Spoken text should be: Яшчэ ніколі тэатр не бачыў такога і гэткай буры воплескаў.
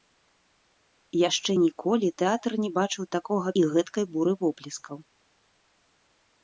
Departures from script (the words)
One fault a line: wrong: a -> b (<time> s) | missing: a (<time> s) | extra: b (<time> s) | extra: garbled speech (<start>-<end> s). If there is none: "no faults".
no faults